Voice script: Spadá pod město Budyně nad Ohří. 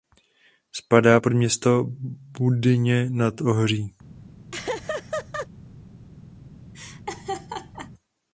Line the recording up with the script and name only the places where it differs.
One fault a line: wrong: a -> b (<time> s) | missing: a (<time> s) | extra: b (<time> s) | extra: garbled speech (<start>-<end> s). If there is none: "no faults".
no faults